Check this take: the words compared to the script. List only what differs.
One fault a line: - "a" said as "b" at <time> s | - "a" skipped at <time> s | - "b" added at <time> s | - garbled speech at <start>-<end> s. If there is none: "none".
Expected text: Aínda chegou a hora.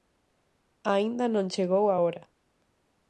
- "non" added at 1.3 s